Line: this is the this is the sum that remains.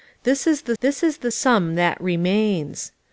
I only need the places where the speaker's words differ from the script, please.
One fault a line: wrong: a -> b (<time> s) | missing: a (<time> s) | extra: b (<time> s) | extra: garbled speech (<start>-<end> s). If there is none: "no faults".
no faults